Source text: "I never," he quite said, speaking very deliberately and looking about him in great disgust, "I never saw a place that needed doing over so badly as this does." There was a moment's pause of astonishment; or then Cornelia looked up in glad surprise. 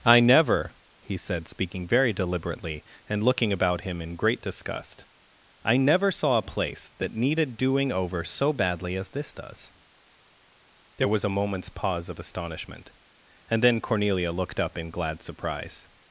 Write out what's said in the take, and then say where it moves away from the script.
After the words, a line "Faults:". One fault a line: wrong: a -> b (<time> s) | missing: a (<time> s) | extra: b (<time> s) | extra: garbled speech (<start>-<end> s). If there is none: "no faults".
"I never," he said, speaking very deliberately and looking about him in great disgust, "I never saw a place that needed doing over so badly as this does." There was a moment's pause of astonishment; and then Cornelia looked up in glad surprise.
Faults:
missing: quite (1.1 s)
wrong: or -> and (13.5 s)